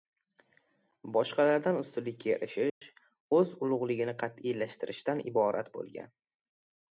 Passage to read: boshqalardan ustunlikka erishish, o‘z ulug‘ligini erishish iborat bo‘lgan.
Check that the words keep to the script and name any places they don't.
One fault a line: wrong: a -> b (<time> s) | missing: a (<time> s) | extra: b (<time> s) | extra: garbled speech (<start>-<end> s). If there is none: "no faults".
wrong: erishish -> qat'iylashtirishdan (4.2 s)